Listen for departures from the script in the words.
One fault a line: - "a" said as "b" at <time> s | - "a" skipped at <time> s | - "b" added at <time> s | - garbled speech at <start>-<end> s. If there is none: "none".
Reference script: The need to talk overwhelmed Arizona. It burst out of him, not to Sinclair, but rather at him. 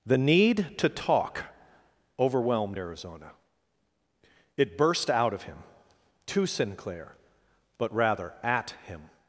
- "not" skipped at 5.6 s